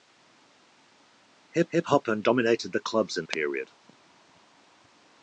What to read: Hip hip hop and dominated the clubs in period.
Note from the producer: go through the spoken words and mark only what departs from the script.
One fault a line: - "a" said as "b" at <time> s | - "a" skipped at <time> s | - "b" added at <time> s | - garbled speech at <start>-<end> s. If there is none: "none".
none